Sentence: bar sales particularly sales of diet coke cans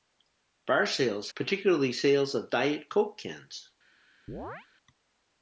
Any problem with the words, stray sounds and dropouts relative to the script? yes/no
yes